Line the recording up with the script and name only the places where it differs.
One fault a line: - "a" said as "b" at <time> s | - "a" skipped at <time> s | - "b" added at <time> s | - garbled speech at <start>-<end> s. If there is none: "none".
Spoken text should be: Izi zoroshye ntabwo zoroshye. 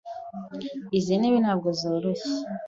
- "zoroshye" said as "ntebe" at 1.2 s